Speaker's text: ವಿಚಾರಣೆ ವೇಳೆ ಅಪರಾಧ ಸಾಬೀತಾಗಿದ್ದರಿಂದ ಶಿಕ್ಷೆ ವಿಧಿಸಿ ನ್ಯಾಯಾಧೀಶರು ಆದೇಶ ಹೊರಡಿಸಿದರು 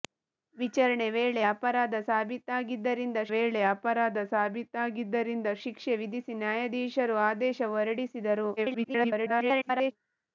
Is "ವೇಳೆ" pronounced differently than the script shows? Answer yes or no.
no